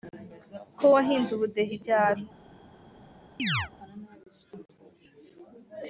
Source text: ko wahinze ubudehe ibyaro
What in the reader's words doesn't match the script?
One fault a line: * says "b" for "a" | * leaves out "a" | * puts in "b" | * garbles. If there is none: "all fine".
all fine